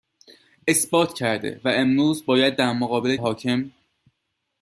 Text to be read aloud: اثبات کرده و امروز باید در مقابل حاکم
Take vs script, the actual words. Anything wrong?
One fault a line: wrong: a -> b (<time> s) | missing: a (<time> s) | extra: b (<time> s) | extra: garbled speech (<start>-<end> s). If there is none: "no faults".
no faults